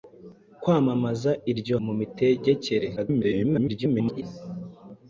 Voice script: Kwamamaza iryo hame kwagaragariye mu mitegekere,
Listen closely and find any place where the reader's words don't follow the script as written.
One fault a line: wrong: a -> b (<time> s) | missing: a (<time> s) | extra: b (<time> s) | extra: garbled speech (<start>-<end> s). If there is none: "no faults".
missing: hame kwagaragariye (1.8 s)
extra: garbled speech (3.0-4.2 s)